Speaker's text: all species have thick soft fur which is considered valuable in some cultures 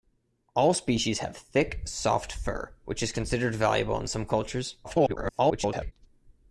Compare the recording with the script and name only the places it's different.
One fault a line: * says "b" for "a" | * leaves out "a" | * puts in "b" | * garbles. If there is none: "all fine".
* garbles